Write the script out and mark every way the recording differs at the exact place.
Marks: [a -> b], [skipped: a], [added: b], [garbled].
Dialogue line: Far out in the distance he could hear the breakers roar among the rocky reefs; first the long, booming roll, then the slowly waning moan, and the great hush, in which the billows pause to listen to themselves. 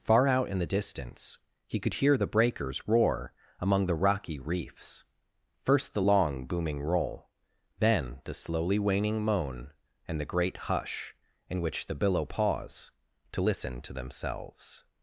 Far out in the distance he could hear the breakers roar among the rocky reefs; first the long, booming roll, then the slowly waning moan, and the great hush, in which the [billows -> billow] pause to listen to themselves.